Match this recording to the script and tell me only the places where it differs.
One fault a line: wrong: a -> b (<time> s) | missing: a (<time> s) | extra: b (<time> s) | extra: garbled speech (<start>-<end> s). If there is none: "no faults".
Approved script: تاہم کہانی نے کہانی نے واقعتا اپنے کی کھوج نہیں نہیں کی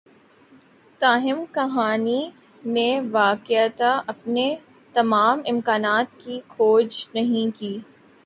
wrong: کہانی نے واقعتا اپنے -> واقعتا اپنے تمام امکانات (3.1 s)
missing: نہیں (7.6 s)